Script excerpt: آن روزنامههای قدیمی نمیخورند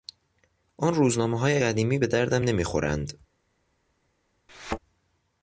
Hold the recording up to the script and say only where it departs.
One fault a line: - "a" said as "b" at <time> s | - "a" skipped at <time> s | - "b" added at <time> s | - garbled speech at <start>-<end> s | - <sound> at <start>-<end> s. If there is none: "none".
- "به دردم" added at 2.0 s
- thud at 4.5-4.8 s